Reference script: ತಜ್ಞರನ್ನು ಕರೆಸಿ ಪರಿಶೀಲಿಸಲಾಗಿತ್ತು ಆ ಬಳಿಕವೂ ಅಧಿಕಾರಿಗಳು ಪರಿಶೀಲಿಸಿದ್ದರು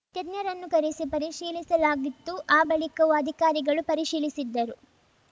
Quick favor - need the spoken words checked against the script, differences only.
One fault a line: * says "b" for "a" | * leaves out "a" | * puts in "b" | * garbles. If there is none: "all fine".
all fine